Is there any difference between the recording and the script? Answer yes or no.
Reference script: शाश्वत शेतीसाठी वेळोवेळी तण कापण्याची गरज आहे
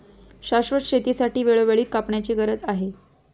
yes